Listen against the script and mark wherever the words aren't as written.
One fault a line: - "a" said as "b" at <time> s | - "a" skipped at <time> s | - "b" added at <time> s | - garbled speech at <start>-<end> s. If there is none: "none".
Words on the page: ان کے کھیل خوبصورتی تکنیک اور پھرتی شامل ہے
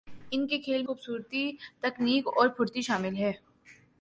none